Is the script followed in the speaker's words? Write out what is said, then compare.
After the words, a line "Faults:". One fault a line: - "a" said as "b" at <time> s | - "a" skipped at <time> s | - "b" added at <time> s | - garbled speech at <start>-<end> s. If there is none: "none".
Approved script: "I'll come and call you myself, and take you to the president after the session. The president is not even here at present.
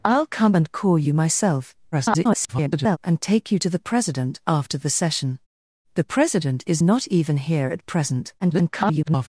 "I'll come and call you myself, [garbled] and take you to the president after the session. The president is not even here at present. [garbled]
Faults:
- garbled speech at 1.9-3.0 s
- garbled speech at 8.4-9.3 s